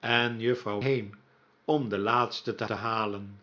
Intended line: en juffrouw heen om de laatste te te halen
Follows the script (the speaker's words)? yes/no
yes